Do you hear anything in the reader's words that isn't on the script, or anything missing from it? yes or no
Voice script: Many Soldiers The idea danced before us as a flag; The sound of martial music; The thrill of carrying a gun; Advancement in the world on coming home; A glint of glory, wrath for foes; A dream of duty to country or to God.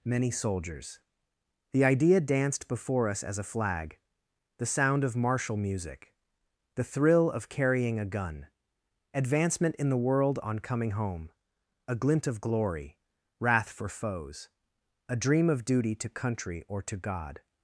no